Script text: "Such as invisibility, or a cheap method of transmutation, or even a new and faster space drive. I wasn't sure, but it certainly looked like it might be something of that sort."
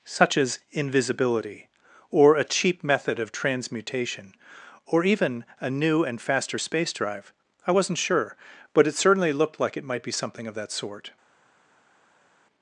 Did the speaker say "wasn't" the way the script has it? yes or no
yes